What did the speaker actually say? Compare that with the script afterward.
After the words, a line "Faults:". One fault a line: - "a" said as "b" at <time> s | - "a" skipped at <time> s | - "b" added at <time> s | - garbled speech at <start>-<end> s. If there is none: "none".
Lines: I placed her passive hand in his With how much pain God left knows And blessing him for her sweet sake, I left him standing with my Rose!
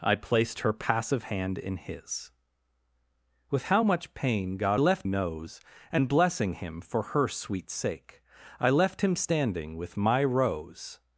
I placed her passive hand in his With how much pain God left knows And blessing him for her sweet sake, I left him standing with my Rose!
Faults:
none